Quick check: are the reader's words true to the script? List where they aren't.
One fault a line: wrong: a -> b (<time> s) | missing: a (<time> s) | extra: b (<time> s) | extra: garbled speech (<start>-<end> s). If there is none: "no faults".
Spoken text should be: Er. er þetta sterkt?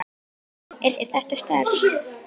no faults